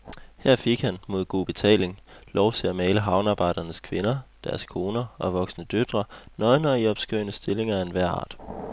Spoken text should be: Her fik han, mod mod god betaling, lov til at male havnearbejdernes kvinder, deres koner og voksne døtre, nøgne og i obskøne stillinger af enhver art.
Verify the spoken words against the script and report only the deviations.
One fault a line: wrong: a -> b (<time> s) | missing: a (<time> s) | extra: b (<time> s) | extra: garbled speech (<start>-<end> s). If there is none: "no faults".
missing: mod (1.2 s)